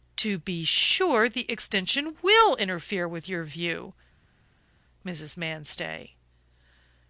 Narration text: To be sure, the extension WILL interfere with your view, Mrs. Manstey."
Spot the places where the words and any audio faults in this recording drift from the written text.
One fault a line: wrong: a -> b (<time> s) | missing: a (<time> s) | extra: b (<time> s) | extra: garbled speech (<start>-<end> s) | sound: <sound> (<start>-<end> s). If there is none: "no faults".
no faults